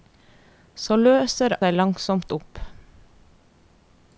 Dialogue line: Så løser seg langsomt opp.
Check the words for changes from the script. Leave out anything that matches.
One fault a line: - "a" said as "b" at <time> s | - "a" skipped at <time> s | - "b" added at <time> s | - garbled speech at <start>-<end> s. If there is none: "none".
none